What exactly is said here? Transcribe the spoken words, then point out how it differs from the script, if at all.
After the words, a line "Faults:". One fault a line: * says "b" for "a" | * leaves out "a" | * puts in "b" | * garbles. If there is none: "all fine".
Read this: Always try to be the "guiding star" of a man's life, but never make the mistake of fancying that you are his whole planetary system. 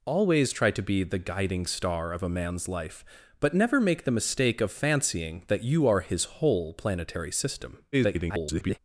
Always try to be the "guiding star" of a man's life, but never make the mistake of fancying that you are his whole planetary system. [garbled]
Faults:
* garbles